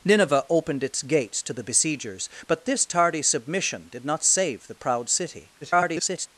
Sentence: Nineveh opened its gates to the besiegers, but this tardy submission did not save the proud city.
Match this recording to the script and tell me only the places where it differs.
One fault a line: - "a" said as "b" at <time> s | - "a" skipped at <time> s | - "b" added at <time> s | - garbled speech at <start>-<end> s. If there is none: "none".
- garbled speech at 5.6-6.3 s